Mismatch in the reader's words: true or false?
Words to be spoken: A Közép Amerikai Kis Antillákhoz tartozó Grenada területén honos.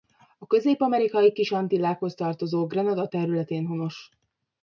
false